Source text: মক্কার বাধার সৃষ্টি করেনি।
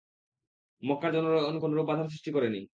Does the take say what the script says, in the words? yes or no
no